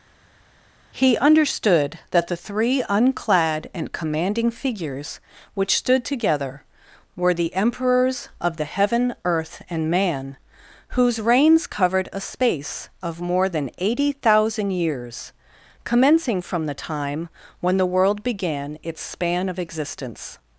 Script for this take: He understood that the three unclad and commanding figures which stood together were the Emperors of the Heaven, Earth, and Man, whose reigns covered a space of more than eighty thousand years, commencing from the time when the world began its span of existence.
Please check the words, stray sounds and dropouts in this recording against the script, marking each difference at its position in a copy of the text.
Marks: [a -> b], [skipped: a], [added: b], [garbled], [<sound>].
He understood that the three unclad and commanding figures which stood together were the Emperors of the Heaven, Earth, and Man, whose reigns covered a space of more than eighty thousand years, commencing from the time when the world began its span of existence.